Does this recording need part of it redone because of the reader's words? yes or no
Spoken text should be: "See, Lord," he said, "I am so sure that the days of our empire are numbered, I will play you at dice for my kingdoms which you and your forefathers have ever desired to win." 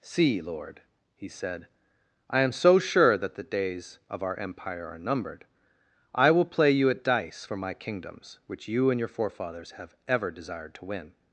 no